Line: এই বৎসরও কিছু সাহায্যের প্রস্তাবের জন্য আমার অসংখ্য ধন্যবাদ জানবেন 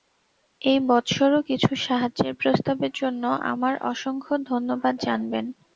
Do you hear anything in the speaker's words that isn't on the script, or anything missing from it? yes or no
no